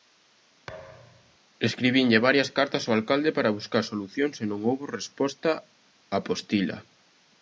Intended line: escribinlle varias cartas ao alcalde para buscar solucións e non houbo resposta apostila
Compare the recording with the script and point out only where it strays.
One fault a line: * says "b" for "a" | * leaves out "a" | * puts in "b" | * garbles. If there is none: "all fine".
all fine